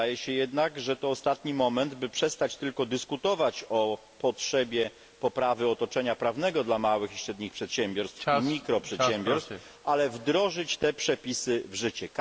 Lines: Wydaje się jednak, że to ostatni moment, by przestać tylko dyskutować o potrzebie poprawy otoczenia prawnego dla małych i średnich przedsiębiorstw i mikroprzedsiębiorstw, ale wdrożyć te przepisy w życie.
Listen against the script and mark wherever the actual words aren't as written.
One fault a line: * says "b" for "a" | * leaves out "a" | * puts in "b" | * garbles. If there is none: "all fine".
all fine